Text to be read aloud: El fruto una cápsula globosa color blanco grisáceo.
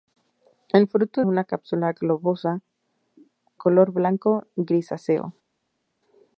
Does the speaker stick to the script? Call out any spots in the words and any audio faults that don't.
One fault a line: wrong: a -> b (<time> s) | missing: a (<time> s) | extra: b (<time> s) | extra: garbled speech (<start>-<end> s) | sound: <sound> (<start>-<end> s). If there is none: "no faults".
no faults